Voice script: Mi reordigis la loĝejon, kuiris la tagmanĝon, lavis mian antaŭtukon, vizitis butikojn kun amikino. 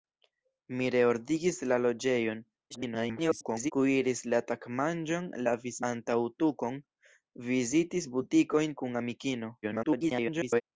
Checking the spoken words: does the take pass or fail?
fail